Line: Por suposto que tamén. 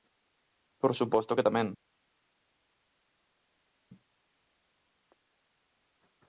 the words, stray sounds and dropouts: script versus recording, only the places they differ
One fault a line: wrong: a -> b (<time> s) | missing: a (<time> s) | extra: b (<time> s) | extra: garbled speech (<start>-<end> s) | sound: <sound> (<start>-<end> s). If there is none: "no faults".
no faults